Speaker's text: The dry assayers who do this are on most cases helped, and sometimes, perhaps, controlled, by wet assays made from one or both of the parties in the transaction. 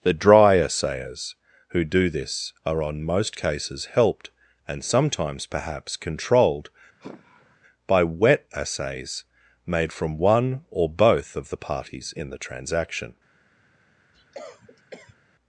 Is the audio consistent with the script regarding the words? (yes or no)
yes